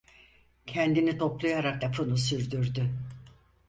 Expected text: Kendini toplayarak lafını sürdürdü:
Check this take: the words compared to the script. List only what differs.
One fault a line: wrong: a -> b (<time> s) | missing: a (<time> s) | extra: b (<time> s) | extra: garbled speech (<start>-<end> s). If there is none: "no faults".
no faults